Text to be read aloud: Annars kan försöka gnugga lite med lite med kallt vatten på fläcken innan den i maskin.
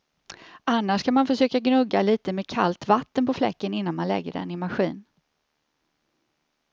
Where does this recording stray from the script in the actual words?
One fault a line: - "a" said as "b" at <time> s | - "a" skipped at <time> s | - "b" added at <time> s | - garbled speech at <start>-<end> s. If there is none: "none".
- "man" added at 1.1 s
- "lite med" skipped at 2.5 s
- "man lägger" added at 3.9 s